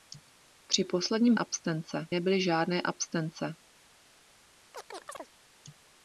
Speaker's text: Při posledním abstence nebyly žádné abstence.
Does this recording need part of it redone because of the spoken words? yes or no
no